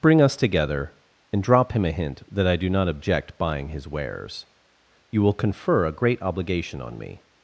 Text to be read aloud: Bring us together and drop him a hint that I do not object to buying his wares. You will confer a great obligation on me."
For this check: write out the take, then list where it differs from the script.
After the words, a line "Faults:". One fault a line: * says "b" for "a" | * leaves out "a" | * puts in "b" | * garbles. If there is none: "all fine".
Bring us together and drop him a hint that I do not object buying his wares. You will confer a great obligation on me."
Faults:
* leaves out "to"